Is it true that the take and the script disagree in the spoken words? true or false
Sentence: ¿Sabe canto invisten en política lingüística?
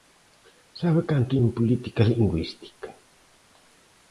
true